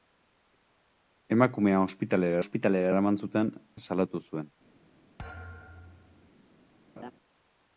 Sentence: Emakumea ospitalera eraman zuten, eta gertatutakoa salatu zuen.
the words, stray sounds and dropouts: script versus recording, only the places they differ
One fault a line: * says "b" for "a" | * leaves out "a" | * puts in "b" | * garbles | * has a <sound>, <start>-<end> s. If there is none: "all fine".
* puts in "ospitalera"
* leaves out "eta gertatutakoa"
* has a thud, 5.2-6.3 s
* has a laugh, 7.0-7.1 s